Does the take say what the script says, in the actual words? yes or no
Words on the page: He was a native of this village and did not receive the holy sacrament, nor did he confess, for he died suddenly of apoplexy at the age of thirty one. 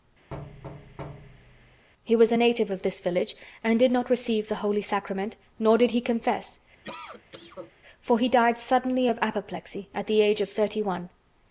yes